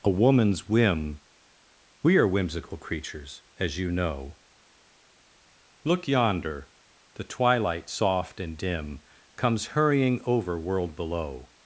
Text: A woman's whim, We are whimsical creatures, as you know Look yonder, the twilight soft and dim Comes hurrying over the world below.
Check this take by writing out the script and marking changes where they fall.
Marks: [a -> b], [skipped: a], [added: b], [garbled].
A woman's whim, We are whimsical creatures, as you know Look yonder, the twilight soft and dim Comes hurrying over [skipped: the] world below.